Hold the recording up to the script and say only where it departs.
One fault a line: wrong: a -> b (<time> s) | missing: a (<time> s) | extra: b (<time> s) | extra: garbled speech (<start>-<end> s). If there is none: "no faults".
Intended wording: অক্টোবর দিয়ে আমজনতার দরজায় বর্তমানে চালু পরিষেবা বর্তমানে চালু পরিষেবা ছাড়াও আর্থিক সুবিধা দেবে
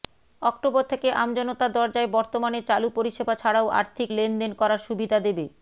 wrong: দিয়ে -> থেকে (0.9 s)
wrong: বর্তমানে চালু পরিষেবা ছাড়াও আর্থিক -> ছাড়াও আর্থিক লেনদেন করার (3.3 s)